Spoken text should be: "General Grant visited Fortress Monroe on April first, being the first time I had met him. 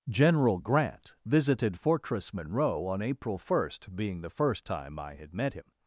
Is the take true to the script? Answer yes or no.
yes